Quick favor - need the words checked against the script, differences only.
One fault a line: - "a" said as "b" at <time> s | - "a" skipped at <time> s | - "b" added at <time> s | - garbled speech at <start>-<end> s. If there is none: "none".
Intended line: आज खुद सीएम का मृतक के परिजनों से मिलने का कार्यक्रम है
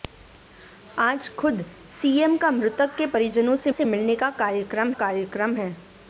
- "से" added at 3.7 s
- "कार्यक्रम" added at 4.9 s